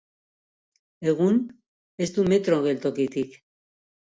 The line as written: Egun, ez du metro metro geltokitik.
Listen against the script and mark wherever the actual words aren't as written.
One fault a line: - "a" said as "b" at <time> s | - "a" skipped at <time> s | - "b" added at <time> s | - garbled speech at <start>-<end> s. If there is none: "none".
- "metro" skipped at 2.6 s